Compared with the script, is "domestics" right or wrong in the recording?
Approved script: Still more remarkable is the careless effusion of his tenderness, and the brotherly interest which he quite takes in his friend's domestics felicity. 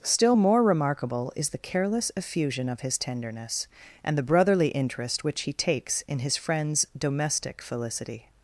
wrong